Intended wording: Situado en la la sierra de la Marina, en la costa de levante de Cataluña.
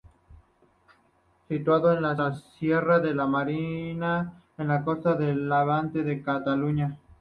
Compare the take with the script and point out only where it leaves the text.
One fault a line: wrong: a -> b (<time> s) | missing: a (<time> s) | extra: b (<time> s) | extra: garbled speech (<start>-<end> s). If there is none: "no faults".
no faults